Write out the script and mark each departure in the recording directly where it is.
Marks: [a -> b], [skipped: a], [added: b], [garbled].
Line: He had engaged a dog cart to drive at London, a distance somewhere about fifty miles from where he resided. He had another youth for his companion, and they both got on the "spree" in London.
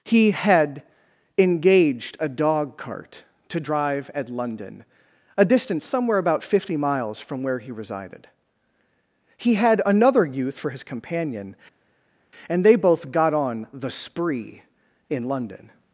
He had engaged a dog cart to drive at London, a distance somewhere about fifty miles from where he resided. He had another youth for his companion, and they both got on the "spree" in London.